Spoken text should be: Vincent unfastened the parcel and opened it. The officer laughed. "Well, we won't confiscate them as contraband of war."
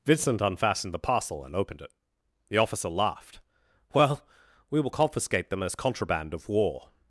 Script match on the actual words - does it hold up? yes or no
no